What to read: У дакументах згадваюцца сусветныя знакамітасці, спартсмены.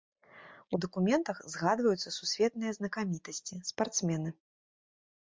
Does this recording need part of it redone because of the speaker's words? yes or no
no